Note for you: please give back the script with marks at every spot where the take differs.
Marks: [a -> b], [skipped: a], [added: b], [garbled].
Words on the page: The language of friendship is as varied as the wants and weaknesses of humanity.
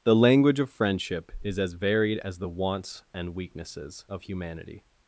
The language of friendship is as varied as the wants and weaknesses of humanity.